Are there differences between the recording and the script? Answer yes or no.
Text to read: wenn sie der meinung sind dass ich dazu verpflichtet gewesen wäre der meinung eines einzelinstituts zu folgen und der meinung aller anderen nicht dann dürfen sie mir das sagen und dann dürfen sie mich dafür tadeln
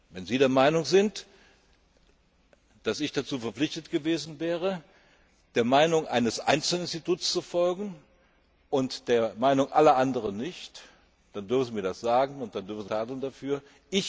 yes